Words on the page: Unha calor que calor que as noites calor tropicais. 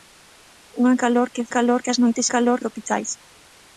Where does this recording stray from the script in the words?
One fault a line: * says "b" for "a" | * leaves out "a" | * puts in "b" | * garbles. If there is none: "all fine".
all fine